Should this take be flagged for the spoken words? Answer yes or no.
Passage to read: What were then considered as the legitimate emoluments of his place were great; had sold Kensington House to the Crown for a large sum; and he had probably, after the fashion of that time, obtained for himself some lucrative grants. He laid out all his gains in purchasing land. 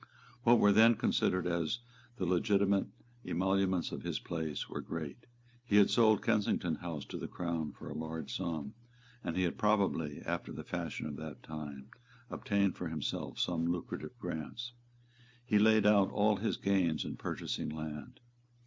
yes